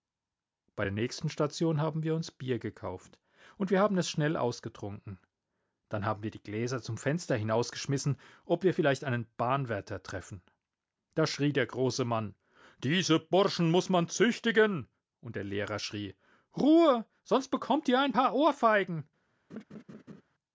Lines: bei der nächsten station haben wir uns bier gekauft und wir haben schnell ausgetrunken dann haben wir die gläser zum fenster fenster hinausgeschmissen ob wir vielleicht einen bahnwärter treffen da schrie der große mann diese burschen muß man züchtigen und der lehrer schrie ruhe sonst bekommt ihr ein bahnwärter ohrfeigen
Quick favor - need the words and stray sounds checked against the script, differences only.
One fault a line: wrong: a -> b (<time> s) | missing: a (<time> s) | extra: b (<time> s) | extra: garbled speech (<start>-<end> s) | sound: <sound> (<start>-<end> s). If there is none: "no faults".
extra: es (4.0 s)
missing: fenster (7.3 s)
wrong: bahnwärter -> paar (18.1 s)
sound: laugh (19.5-20.2 s)